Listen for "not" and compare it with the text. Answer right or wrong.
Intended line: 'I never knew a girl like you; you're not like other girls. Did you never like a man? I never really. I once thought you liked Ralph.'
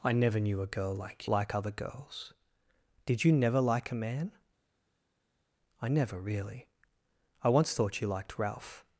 wrong